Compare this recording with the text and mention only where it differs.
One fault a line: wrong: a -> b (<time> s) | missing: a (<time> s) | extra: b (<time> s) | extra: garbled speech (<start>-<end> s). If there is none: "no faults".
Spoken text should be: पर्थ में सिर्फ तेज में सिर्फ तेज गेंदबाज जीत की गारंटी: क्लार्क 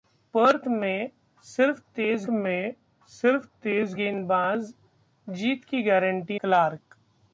no faults